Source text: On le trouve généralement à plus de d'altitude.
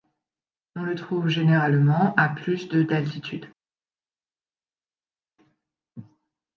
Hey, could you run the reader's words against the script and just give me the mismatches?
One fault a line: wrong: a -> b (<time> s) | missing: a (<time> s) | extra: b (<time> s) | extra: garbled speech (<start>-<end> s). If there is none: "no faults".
no faults